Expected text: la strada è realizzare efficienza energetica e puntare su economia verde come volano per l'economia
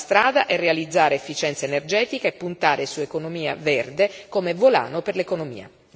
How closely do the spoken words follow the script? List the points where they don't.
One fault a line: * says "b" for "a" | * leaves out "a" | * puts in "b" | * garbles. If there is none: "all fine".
all fine